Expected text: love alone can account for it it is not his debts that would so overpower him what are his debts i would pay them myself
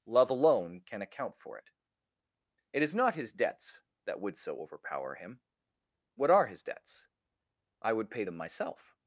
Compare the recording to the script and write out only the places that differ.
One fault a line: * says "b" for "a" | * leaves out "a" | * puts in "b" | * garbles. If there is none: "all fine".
all fine